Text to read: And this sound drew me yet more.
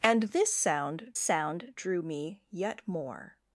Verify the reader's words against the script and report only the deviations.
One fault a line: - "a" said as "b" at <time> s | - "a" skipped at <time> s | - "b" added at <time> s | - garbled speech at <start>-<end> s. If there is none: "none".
- "sound" added at 1.2 s